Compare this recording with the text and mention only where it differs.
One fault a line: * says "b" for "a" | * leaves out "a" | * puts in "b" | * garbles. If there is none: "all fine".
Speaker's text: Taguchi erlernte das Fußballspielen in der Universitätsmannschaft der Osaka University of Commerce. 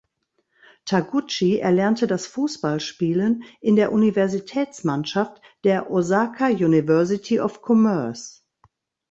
all fine